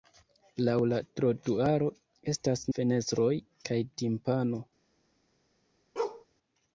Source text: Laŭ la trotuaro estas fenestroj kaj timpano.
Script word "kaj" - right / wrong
right